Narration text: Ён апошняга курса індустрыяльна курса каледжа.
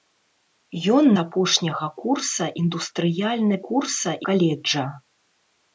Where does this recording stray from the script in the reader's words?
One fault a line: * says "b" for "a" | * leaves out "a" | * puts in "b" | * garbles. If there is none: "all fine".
all fine